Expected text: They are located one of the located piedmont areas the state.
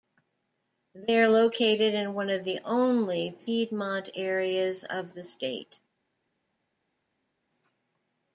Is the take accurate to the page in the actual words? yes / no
no